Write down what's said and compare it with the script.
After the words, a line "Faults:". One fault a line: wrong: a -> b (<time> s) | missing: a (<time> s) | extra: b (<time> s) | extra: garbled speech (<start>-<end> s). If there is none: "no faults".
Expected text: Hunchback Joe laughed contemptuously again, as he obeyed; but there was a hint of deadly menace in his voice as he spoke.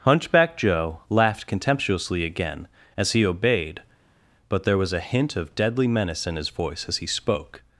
Hunchback Joe laughed contemptuously again, as he obeyed; but there was a hint of deadly menace in his voice as he spoke.
Faults:
no faults